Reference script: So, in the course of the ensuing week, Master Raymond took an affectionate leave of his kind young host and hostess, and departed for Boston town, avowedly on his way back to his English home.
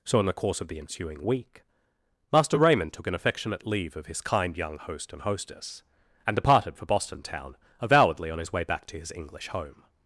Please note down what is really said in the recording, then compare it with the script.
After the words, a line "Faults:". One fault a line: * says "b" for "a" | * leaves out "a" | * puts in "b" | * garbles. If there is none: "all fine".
So, in the course of the ensuing week, Master Raymond took an affectionate leave of his kind young host and hostess, and departed for Boston town, avowedly on his way back to his English home.
Faults:
all fine